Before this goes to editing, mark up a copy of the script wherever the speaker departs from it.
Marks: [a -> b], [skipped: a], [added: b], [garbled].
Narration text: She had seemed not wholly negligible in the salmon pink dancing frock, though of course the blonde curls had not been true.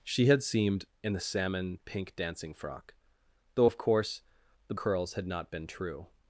She had seemed [skipped: not wholly negligible] in the salmon pink dancing frock, though of course the [skipped: blonde] curls had not been true.